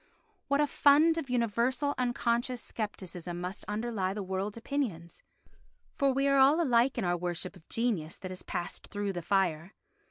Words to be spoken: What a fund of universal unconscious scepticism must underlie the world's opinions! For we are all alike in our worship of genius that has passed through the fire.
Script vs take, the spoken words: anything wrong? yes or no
no